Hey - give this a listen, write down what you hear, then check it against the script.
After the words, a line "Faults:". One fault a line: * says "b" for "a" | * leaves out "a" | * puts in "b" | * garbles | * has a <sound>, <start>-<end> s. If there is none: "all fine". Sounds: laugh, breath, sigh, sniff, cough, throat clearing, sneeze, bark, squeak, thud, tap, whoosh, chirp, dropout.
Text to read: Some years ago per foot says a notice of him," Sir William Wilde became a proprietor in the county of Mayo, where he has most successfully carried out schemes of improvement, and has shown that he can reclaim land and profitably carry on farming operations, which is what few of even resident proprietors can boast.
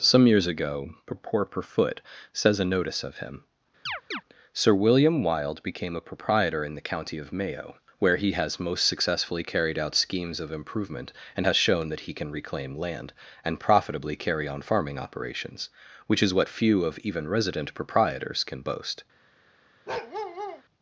Some years ago purport per foot says a notice of him," Sir William Wilde became a proprietor in the county of Mayo, where he has most successfully carried out schemes of improvement, and has shown that he can reclaim land and profitably carry on farming operations, which is what few of even resident proprietors can boast.
Faults:
* puts in "purport"
* has a chirp, 3.9-4.2 s
* has a bark, 19.9-20.6 s